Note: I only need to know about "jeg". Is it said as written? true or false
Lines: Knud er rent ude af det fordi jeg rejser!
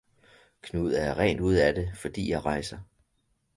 true